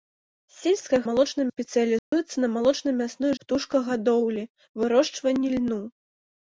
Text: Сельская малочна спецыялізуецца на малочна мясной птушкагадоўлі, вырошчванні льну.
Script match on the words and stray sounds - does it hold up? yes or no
no